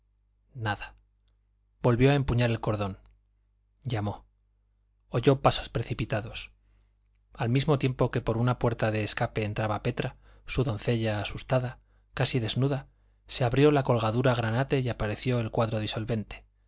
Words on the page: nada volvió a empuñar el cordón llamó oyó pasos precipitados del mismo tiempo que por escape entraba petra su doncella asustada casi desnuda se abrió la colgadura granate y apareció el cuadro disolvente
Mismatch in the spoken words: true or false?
true